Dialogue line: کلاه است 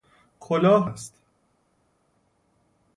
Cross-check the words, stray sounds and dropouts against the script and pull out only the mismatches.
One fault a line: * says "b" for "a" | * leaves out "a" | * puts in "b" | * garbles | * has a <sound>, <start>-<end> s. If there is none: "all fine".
all fine